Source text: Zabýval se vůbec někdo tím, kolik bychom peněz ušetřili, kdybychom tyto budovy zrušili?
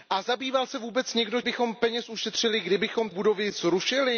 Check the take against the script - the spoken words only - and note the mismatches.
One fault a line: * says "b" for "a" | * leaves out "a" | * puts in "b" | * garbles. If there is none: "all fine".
* leaves out "tím kolik"
* leaves out "tyto"